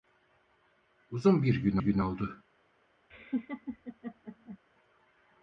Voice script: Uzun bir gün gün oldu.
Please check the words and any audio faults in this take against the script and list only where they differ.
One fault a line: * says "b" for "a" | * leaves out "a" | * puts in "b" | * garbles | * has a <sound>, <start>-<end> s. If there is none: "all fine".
* has a laugh, 3.1-4.6 s